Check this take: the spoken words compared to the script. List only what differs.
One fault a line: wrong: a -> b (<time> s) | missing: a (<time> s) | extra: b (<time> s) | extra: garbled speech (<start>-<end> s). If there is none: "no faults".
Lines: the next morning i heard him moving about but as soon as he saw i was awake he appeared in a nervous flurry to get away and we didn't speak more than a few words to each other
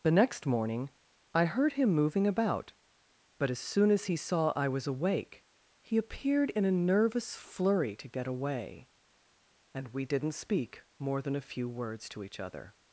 no faults